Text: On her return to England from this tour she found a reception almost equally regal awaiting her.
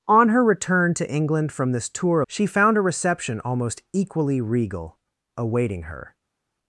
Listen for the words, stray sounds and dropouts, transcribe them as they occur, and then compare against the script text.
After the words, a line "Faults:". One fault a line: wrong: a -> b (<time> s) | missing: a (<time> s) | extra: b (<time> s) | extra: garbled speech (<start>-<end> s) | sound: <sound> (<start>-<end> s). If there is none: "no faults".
On her return to England from this tour she found a reception almost equally regal awaiting her.
Faults:
no faults